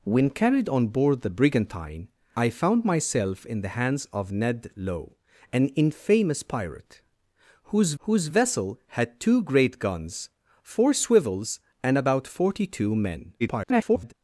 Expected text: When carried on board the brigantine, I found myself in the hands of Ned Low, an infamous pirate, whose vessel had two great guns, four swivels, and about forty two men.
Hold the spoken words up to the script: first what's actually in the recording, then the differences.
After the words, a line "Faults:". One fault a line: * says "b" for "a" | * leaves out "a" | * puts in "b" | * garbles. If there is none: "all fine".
When carried on board the brigantine, I found myself in the hands of Ned Low, an infamous pirate, whose whose vessel had two great guns, four swivels, and about forty two men. [garbled]
Faults:
* puts in "whose"
* garbles